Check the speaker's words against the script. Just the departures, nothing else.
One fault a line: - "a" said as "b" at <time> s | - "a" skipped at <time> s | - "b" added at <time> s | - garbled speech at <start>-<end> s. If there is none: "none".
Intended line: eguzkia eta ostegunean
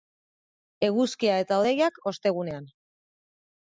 - "hodeiak" added at 1.6 s